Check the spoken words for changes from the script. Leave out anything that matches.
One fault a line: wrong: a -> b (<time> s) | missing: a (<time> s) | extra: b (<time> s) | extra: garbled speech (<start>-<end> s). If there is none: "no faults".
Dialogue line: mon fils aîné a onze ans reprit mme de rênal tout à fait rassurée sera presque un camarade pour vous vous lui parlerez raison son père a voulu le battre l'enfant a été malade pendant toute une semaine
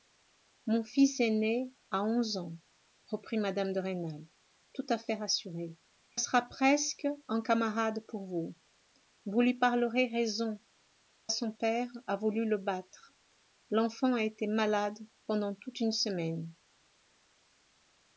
no faults